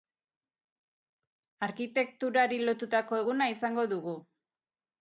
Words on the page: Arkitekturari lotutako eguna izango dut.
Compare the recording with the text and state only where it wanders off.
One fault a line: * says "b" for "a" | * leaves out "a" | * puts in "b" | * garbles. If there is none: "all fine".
* says "dugu" for "dut"